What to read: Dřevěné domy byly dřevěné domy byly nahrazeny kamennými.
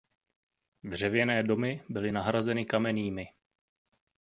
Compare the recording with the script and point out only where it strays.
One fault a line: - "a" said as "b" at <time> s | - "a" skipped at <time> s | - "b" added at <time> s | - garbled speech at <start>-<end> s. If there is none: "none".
- "dřevěné domy byly" skipped at 2.1 s